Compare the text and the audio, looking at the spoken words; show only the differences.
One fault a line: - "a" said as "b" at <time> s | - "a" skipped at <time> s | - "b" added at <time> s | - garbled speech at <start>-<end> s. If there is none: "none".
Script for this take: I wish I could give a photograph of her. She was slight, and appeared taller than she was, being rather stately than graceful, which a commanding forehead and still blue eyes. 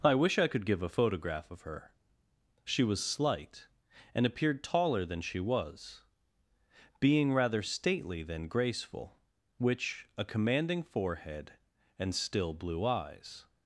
none